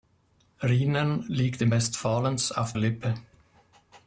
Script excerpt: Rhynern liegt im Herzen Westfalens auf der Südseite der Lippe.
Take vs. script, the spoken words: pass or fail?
fail